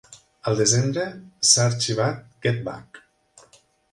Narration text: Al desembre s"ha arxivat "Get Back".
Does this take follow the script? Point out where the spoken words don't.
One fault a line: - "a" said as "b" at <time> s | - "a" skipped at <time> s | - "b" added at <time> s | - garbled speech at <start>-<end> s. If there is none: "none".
none